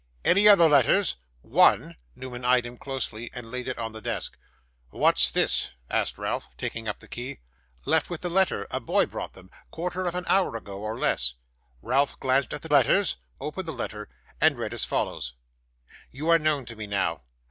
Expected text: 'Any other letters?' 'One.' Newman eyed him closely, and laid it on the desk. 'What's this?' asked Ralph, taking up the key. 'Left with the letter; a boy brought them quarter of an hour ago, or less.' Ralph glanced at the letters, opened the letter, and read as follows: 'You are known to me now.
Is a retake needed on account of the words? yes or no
no